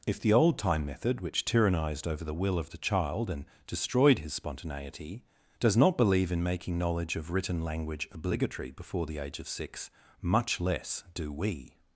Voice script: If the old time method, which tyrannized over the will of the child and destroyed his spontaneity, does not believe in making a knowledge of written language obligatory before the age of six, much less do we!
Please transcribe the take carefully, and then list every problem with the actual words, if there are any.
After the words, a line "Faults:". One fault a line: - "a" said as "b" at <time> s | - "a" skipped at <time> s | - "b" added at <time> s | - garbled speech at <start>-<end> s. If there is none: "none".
If the old time method, which tyrannized over the will of the child and destroyed his spontaneity, does not believe in making knowledge of written language obligatory before the age of six, much less do we!
Faults:
- "a" skipped at 6.8 s